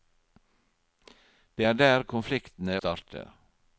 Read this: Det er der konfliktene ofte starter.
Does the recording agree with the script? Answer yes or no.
no